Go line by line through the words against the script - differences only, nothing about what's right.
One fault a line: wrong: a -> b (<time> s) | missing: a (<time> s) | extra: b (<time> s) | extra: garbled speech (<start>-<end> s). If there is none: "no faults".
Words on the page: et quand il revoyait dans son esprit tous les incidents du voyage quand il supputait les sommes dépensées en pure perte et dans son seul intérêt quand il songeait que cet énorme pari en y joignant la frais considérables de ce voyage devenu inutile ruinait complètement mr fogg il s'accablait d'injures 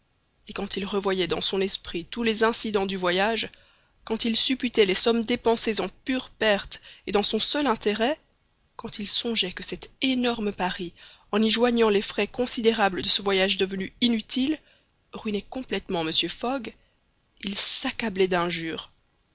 wrong: la -> les (11.9 s)